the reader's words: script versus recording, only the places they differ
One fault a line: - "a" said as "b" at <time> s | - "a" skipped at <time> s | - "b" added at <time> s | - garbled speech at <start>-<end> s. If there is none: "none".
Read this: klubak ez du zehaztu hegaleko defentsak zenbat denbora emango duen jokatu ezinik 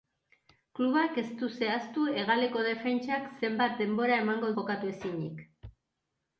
- "duen" skipped at 4.5 s